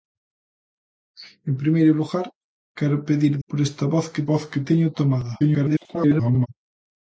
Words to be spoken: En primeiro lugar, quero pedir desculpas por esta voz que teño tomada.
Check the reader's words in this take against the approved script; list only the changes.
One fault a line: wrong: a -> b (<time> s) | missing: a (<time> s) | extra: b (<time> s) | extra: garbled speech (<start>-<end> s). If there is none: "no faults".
missing: desculpas (3.3 s)
extra: voz que (4.3 s)
extra: garbled speech (5.4-6.5 s)